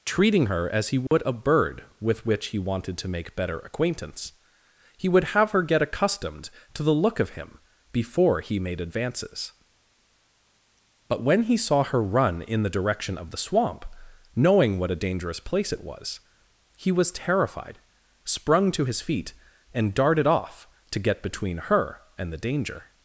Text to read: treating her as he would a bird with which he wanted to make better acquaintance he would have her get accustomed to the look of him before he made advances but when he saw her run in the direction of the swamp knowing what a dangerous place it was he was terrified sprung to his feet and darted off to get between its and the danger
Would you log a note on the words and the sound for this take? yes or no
yes